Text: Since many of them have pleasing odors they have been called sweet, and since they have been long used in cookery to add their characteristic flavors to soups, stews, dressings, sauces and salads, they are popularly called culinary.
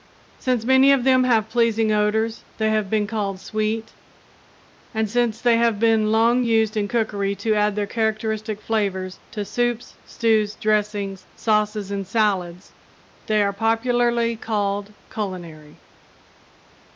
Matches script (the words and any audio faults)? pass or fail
pass